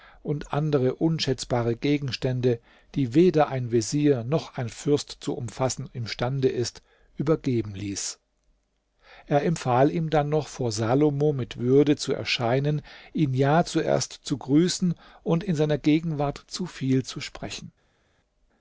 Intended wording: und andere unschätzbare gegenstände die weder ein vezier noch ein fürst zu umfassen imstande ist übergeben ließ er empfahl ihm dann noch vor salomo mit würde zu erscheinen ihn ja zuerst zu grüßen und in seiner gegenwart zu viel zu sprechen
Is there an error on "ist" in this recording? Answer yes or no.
no